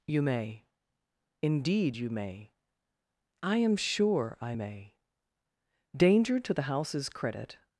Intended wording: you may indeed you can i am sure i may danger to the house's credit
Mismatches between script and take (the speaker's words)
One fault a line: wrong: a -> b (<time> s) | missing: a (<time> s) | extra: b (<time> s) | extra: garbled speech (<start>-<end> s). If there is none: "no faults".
wrong: can -> may (2.1 s)